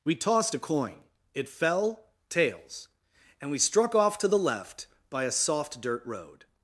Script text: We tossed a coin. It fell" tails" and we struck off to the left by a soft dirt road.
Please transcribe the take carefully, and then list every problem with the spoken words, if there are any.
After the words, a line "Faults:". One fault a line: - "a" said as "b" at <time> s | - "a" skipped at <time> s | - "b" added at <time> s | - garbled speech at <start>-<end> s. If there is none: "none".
We tossed a coin. It fell" tails" and we struck off to the left by a soft dirt road.
Faults:
none